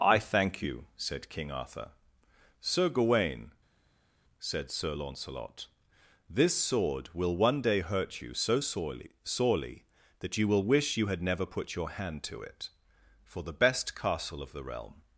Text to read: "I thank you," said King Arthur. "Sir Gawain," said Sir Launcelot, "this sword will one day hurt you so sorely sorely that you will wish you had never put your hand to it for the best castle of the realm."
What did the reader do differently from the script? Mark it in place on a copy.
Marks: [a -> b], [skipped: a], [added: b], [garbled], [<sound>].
"I thank you," said King Arthur. "Sir Gawain," said Sir Launcelot, "this sword will one day hurt you so sorely sorely that you will wish you had never put your hand to it for the best castle of the realm."